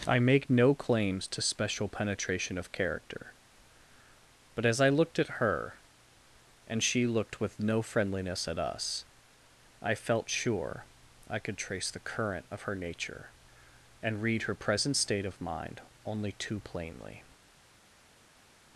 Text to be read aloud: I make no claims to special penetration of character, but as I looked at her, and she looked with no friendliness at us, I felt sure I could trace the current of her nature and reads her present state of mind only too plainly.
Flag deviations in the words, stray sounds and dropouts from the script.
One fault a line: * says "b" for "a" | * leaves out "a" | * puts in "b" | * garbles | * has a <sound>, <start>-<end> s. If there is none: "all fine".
* says "read" for "reads"